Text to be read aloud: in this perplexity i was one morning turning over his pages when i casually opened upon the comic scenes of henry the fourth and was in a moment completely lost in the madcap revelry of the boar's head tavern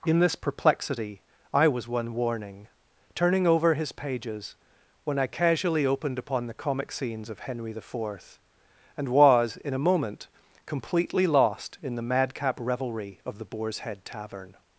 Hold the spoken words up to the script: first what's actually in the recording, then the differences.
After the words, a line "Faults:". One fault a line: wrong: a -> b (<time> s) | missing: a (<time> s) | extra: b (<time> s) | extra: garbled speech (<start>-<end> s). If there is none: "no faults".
in this perplexity i was one warning turning over his pages when i casually opened upon the comic scenes of henry the fourth and was in a moment completely lost in the madcap revelry of the boar's head tavern
Faults:
wrong: morning -> warning (2.1 s)